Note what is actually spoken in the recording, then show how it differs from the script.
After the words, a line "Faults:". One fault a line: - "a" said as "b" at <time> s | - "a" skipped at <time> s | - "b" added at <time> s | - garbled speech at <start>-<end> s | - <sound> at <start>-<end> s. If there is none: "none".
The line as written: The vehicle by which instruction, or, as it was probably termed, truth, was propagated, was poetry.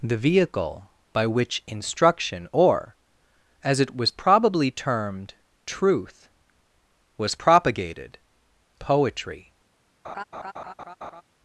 The vehicle by which instruction, or, as it was probably termed, truth, was propagated, poetry.
Faults:
- "was" skipped at 8.2 s
- laugh at 10.0-11.2 s